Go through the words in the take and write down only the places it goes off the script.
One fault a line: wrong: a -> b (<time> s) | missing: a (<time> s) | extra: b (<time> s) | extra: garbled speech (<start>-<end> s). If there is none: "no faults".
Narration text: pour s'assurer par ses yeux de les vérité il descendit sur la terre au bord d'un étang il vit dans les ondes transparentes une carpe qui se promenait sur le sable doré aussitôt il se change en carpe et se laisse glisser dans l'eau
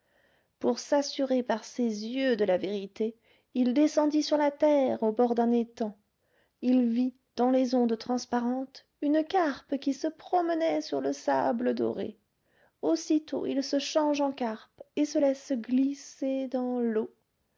wrong: les -> la (2.4 s)